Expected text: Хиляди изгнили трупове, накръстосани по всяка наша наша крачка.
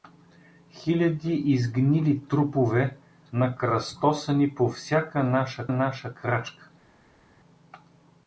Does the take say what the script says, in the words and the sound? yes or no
yes